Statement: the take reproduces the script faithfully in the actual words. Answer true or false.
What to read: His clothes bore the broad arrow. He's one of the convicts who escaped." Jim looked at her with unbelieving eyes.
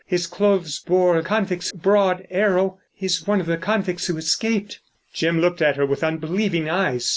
false